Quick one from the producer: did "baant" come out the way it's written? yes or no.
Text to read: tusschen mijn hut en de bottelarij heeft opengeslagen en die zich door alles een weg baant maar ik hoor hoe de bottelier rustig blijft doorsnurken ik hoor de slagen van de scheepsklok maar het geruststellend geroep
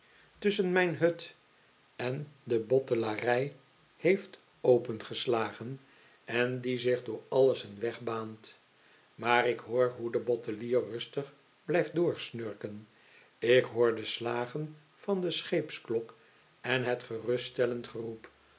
yes